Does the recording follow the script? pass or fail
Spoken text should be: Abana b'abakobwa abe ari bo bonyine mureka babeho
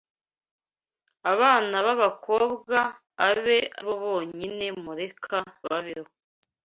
fail